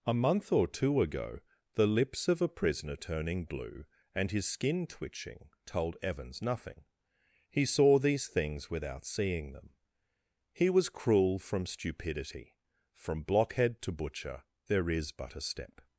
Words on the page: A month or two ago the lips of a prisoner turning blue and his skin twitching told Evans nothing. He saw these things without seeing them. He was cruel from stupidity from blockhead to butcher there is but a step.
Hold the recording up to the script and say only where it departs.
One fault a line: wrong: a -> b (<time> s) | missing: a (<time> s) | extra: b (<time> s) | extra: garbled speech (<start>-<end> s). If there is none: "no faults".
no faults